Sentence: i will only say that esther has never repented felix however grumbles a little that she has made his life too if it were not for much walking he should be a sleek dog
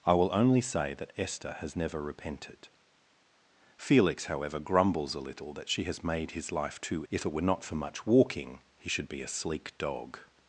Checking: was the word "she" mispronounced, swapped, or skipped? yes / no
no